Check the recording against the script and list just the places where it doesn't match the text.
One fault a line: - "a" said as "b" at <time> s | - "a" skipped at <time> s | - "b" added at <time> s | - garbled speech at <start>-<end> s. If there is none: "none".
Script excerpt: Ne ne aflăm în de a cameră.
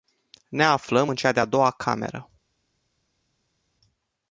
- "ne" skipped at 0.6 s
- "cea" added at 1.1 s
- "doua" added at 1.4 s